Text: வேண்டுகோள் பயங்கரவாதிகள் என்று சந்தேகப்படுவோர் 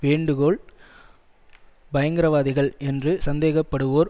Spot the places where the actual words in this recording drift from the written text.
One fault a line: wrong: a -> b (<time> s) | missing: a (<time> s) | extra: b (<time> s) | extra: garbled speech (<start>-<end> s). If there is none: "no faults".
no faults